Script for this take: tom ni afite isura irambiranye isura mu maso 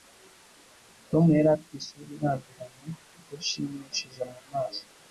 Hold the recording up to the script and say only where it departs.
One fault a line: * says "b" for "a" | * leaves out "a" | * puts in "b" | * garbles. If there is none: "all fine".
* says "yari" for "ni"
* says "idashimishije" for "isura"